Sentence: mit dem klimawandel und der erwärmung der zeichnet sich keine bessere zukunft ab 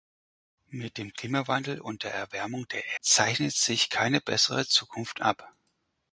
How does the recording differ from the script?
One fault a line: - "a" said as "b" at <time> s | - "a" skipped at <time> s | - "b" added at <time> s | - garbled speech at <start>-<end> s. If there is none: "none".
none